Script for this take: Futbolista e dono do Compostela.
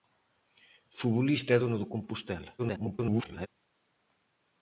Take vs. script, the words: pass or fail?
fail